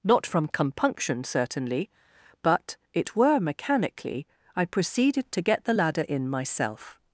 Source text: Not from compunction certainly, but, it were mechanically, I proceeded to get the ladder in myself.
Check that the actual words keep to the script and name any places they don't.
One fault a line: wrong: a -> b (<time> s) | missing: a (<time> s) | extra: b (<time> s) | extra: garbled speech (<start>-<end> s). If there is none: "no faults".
no faults